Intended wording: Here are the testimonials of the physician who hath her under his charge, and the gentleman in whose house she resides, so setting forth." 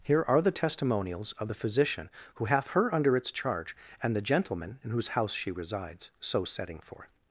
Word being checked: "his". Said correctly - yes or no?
no